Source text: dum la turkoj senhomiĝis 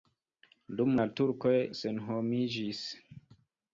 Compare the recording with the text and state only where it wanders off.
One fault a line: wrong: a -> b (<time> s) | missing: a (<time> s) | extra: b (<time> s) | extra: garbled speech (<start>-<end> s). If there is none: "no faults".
no faults